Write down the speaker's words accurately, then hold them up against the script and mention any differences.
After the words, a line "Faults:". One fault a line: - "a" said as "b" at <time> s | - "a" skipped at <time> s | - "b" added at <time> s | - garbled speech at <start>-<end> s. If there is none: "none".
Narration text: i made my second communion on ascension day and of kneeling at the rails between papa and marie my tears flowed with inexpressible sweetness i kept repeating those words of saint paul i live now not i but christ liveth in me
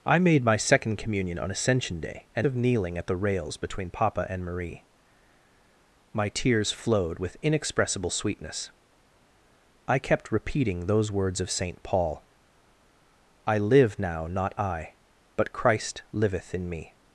i made my second communion on ascension day and of kneeling at the rails between papa and marie my tears flowed with inexpressible sweetness i kept repeating those words of saint paul i live now not i but christ liveth in me
Faults:
none